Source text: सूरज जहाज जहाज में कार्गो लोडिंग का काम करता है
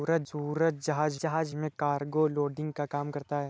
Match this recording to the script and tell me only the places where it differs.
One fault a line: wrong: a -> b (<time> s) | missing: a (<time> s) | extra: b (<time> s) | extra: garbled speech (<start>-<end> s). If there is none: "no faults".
no faults